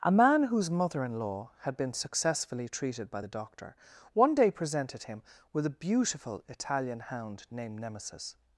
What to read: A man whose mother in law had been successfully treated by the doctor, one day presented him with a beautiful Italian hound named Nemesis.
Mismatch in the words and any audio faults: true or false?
false